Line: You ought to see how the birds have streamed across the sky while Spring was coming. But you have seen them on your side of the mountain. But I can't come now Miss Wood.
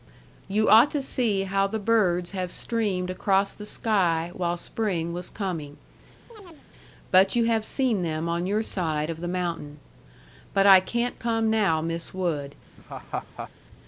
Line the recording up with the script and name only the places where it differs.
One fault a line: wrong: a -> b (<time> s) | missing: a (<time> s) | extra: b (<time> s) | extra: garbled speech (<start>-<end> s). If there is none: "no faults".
no faults